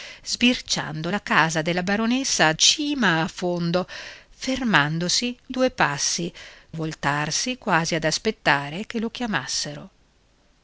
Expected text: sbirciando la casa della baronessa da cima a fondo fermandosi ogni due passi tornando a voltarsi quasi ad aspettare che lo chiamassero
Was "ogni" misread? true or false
true